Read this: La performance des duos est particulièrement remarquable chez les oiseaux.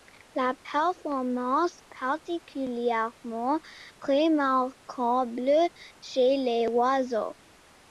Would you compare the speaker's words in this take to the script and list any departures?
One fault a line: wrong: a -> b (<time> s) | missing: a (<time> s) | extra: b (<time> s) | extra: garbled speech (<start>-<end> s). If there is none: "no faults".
missing: des duos est (1.8 s)